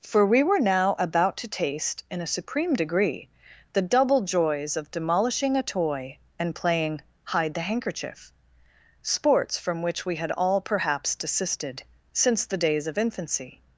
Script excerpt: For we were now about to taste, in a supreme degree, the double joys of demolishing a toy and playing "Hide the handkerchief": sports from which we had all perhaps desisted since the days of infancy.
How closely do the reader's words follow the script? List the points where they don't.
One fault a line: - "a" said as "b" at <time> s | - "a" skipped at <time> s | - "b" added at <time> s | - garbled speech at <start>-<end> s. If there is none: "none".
none